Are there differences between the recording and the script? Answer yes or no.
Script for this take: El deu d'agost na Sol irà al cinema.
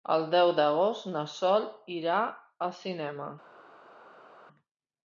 no